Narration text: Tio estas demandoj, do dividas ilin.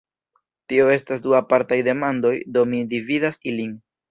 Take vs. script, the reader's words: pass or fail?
fail